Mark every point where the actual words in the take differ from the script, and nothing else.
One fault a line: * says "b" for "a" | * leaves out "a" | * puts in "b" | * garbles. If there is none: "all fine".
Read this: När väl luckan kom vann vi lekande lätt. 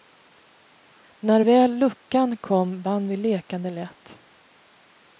all fine